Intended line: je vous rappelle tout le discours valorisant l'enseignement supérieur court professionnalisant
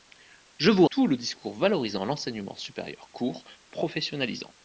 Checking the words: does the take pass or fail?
fail